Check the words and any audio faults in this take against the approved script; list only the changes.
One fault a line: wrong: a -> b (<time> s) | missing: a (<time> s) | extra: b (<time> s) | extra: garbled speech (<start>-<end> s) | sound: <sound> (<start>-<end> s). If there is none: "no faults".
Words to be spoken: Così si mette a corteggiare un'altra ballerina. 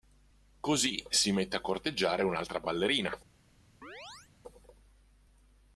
sound: chirp (3.8-4.3 s)